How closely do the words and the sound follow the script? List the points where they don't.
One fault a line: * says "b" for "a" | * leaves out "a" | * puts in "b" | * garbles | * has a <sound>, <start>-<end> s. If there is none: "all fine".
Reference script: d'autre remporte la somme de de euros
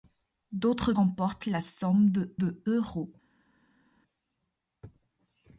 all fine